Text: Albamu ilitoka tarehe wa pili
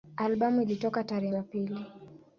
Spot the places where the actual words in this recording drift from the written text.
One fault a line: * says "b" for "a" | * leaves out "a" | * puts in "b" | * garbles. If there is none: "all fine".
all fine